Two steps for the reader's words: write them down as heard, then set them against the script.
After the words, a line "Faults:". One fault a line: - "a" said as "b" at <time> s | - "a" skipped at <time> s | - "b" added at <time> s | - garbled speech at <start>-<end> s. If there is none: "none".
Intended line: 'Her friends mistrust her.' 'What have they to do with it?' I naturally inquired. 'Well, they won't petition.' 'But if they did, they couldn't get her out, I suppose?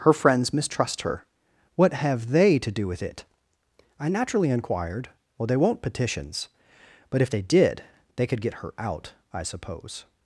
'Her friends mistrust her.' 'What have they to do with it?' I naturally inquired. 'Well, they won't petitions.' 'But if they did, they could get her out, I suppose?
Faults:
- "petition" said as "petitions" at 5.8 s
- "couldn't" said as "could" at 8.3 s